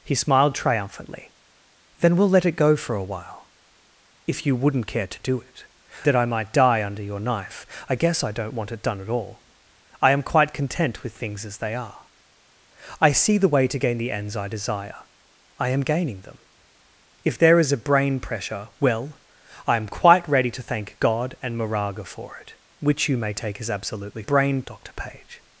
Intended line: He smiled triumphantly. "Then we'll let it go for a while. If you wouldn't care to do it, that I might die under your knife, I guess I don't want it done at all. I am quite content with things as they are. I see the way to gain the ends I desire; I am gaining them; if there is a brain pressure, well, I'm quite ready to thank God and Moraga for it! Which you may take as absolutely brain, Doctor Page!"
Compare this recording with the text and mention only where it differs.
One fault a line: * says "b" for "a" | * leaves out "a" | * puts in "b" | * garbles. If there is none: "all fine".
all fine